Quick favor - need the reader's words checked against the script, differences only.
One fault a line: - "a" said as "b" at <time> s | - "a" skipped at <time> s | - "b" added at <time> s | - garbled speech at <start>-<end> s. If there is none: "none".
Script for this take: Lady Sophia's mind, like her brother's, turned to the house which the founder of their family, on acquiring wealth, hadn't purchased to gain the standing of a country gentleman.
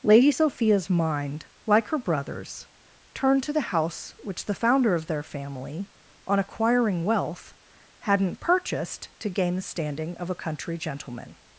none